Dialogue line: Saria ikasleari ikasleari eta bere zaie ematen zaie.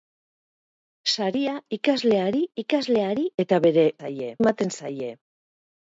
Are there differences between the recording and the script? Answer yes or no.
no